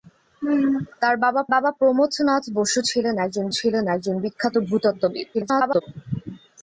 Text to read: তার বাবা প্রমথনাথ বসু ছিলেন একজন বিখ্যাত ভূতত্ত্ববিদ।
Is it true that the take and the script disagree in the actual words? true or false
true